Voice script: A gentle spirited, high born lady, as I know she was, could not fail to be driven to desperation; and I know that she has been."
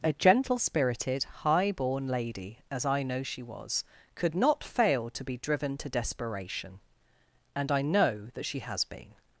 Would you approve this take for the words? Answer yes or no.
yes